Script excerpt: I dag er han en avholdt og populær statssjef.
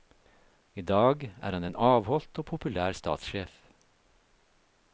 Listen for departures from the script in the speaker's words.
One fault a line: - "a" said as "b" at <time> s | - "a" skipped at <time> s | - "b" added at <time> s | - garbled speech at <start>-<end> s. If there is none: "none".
none